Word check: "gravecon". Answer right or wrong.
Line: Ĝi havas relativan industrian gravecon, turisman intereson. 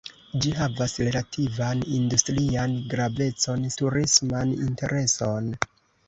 right